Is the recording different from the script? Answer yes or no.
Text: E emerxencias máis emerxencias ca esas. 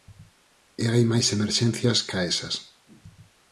yes